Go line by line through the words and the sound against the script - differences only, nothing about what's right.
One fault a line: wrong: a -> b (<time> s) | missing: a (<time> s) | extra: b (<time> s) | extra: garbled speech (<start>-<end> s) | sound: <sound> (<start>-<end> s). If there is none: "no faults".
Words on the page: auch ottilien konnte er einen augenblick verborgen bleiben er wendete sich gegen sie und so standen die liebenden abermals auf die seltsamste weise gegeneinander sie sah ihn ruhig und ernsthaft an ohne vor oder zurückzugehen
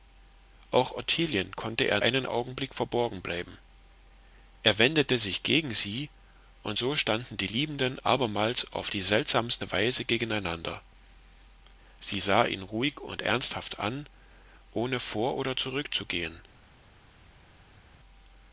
no faults